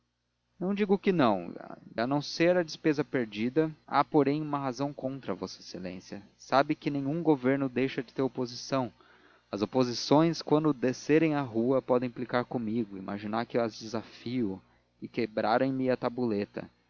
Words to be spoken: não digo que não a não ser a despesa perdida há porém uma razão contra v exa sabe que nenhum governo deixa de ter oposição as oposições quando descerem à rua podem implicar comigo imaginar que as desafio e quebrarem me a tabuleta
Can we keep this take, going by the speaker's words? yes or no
yes